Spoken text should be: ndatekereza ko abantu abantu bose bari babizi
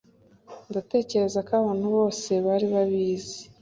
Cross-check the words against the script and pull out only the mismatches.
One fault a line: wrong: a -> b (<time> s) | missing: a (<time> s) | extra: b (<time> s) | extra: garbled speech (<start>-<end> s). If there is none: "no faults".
missing: abantu (1.9 s)